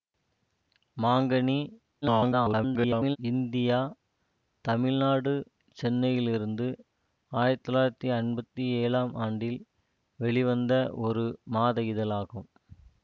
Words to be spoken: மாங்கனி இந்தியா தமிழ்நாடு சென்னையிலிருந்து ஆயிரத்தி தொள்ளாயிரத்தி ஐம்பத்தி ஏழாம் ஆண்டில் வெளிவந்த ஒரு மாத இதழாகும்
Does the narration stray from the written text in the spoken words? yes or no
yes